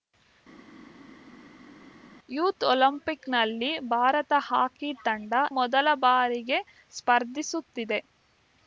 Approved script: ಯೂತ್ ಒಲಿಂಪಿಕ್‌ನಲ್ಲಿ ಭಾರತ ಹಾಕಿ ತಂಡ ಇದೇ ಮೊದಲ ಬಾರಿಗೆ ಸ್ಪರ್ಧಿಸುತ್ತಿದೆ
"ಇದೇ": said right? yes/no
no